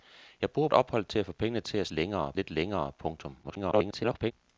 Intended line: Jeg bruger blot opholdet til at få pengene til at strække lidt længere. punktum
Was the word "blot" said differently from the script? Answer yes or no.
yes